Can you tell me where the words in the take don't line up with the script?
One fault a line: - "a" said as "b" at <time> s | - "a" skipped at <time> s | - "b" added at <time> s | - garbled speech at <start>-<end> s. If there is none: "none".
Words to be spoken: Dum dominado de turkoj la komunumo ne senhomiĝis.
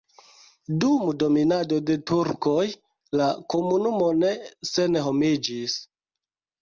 none